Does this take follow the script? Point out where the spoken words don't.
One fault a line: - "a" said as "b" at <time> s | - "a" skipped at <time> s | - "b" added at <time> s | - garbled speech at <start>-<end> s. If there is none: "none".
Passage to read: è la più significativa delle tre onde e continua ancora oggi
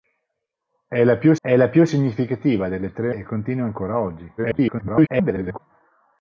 - "è la più" added at 1.4 s
- "onde" skipped at 3.1 s
- garbled speech at 4.4-5.6 s